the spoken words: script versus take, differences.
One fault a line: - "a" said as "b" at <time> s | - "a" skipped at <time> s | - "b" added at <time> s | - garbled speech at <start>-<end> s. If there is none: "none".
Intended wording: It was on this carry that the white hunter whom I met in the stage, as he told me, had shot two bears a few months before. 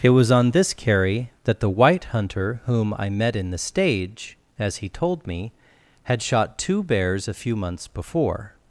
none